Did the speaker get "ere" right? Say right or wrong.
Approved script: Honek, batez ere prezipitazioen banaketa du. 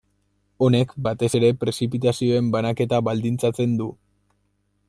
right